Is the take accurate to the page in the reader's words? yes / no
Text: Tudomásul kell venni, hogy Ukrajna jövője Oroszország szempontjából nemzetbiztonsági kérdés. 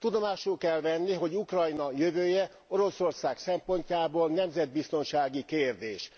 yes